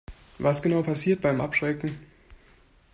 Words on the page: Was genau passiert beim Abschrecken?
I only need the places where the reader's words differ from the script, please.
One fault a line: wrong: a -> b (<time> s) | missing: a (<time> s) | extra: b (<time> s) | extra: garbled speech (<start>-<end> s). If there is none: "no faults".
no faults